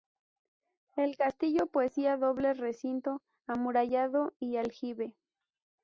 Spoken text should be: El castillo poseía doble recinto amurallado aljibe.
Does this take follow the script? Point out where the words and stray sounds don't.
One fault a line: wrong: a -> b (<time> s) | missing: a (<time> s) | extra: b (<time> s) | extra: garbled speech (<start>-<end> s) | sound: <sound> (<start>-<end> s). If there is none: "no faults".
extra: y (4.4 s)